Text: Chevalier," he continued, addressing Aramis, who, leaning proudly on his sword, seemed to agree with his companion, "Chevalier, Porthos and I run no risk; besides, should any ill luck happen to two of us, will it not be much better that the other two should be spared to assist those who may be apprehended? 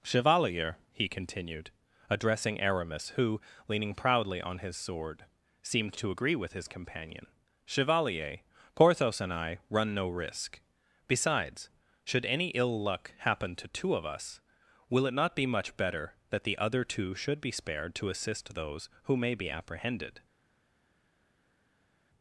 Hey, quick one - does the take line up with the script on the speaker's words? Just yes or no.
yes